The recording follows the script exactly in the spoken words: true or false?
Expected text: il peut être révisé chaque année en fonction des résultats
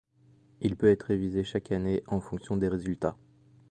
true